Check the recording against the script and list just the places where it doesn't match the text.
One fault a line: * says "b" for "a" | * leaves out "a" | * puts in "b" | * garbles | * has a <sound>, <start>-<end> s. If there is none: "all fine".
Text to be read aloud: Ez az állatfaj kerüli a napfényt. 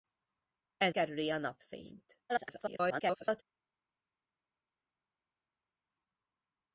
* leaves out "az állatfaj"
* garbles